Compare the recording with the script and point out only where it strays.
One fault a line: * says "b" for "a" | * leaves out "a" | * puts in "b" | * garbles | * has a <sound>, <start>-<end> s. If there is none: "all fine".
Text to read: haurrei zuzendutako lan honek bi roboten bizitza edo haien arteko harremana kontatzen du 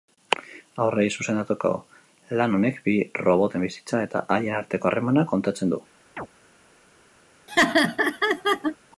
* says "eta" for "edo"
* has a chirp, 6.2-6.3 s
* has a laugh, 7.5-8.8 s